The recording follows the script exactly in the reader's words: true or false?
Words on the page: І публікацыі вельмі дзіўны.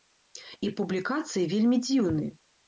true